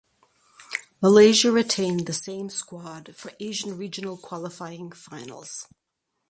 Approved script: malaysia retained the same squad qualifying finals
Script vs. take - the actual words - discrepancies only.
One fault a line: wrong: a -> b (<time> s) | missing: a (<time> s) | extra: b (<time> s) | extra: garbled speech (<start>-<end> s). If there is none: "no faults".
extra: for asian regional (3.1 s)